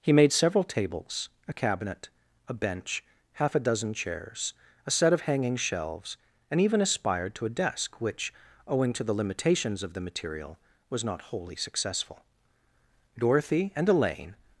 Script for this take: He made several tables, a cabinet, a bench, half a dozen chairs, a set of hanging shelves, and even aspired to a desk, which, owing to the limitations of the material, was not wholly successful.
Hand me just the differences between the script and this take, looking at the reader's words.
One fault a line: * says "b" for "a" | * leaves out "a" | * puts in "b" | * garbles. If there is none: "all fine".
* puts in "Dorothy and Elaine"